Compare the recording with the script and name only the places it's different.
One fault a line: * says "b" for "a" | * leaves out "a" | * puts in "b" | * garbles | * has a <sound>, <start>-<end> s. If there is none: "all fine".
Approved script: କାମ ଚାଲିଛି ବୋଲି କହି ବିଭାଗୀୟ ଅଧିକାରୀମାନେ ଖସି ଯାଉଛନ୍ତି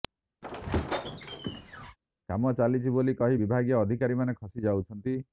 * has a squeak, 0.4-2.0 s